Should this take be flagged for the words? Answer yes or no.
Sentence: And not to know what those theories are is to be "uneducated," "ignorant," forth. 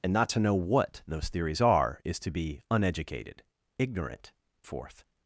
no